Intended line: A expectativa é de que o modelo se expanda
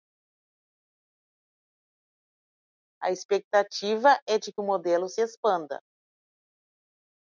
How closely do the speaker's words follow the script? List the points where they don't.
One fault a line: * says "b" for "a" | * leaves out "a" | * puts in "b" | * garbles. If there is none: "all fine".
all fine